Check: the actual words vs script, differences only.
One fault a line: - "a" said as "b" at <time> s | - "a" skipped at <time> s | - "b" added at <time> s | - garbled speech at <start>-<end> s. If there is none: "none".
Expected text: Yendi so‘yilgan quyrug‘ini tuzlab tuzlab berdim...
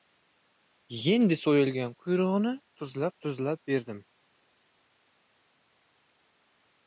none